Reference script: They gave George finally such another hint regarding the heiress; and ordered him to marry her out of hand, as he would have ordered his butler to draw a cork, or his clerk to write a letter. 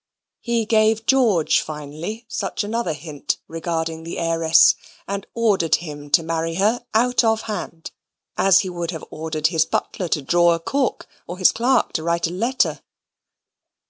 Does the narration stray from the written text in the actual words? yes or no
yes